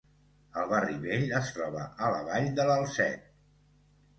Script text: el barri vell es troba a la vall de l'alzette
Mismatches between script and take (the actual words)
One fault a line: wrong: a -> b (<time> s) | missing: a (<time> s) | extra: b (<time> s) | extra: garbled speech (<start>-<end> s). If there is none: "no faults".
no faults